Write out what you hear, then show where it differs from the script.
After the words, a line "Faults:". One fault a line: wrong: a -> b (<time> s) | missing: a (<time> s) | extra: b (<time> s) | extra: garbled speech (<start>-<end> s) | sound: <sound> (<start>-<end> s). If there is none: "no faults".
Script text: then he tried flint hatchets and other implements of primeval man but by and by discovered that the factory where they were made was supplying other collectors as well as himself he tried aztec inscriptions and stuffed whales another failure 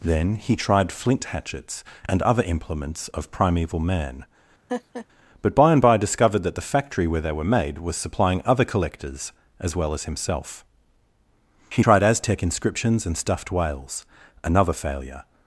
then he tried flint hatchets and other implements of primeval man but by and by discovered that the factory where they were made was supplying other collectors as well as himself he tried aztec inscriptions and stuffed whales another failure
Faults:
sound: laugh (4.7-5.1 s)